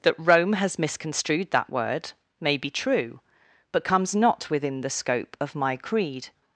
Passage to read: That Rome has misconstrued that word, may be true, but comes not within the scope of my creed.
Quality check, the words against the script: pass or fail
pass